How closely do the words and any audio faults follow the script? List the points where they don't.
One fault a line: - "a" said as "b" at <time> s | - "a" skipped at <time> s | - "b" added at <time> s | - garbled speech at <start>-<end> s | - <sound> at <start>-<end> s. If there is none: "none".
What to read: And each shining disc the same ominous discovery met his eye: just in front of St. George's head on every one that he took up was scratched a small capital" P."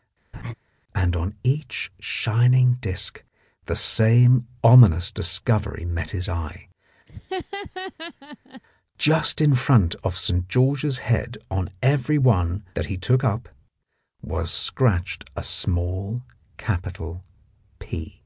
- laugh at 0.3-0.5 s
- "on" added at 1.2 s
- laugh at 7.1-8.6 s